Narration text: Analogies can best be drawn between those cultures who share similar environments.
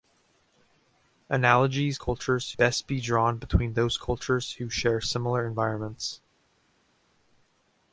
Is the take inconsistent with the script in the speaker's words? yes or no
yes